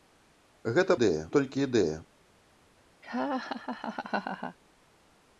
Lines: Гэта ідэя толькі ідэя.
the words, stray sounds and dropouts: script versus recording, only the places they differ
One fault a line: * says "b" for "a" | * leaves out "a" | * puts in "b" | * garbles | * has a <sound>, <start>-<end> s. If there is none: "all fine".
* has a laugh, 3.0-4.6 s